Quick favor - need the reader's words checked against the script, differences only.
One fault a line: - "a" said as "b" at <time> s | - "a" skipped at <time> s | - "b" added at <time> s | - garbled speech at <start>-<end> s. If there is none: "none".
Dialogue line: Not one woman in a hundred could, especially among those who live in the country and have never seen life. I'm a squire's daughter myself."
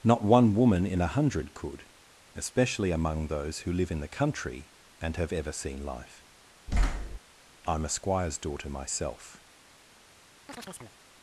- "never" said as "ever" at 5.3 s